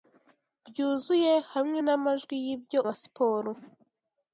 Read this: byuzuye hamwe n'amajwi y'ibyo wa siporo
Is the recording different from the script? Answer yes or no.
no